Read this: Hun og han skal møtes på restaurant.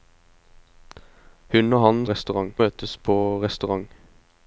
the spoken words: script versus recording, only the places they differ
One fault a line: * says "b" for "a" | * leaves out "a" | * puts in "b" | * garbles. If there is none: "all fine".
* says "restaurant" for "skal"